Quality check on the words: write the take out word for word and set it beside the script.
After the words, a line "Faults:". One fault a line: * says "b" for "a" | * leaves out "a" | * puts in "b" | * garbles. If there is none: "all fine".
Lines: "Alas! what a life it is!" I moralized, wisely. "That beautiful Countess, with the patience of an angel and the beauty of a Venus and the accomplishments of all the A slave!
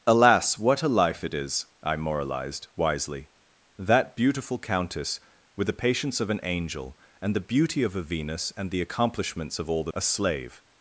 "Alas! what a life it is!" I moralized, wisely. "That beautiful Countess, with the patience of an angel and the beauty of a Venus and the accomplishments of all the A slave!
Faults:
all fine